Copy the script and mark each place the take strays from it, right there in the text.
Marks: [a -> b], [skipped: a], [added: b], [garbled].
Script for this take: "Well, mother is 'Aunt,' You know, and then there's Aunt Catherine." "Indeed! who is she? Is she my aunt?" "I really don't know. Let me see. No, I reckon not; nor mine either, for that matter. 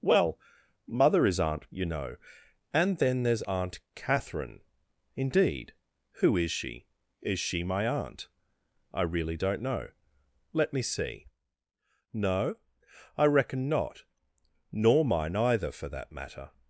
"Well, mother is 'Aunt,' You know, and then there's Aunt Catherine." "Indeed! who is she? Is she my aunt?" "I really don't know. Let me see. No, I reckon not; nor mine either, for that matter.